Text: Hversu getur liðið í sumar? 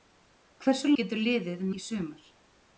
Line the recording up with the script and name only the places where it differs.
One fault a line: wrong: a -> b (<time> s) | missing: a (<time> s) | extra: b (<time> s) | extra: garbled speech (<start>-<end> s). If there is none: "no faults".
no faults